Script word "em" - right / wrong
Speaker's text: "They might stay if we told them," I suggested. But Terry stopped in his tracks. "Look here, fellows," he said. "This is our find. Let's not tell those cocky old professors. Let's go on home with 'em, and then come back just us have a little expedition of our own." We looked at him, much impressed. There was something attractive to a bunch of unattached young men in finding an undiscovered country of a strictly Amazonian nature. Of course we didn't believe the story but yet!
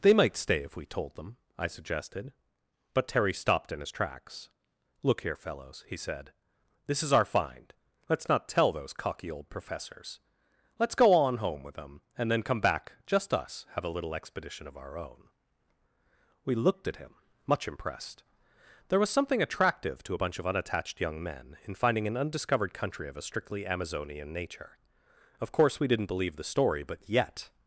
wrong